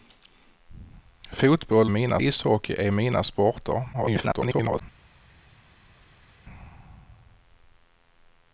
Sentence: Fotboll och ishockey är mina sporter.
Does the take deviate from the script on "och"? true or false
true